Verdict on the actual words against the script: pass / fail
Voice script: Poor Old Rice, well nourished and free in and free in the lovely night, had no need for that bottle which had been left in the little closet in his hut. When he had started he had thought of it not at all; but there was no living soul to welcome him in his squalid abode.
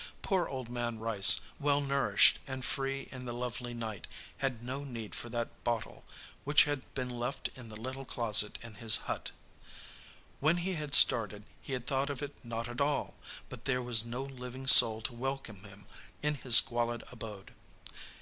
fail